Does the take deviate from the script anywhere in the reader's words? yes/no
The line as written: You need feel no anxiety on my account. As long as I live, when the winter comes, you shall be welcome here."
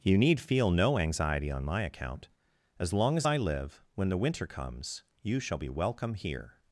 no